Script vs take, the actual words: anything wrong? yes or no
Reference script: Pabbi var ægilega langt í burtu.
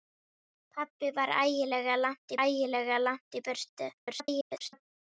yes